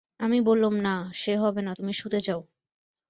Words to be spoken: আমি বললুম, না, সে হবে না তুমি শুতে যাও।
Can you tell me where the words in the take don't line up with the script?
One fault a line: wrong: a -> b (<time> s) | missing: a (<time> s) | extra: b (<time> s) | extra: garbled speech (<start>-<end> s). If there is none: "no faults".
no faults